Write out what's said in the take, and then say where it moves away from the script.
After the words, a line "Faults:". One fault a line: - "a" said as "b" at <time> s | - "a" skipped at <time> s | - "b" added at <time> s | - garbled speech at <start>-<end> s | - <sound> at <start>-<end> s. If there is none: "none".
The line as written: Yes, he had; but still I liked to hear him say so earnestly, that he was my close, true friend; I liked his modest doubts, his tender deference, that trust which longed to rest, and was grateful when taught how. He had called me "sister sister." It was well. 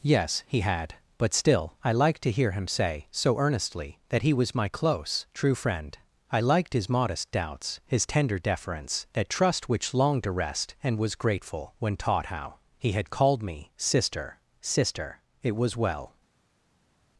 Yes, he had; but still I liked to hear him say so earnestly, that he was my close, true friend; I liked his modest doubts, his tender deference, that trust which longed to rest, and was grateful when taught how. He had called me "sister sister." It was well.
Faults:
none